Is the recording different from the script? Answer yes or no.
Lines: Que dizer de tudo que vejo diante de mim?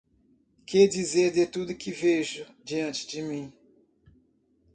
no